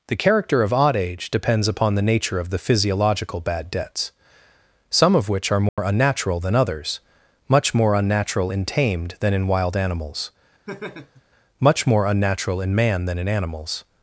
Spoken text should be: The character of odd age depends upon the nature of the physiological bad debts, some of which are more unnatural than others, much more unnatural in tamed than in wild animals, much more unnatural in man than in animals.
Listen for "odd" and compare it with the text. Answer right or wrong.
right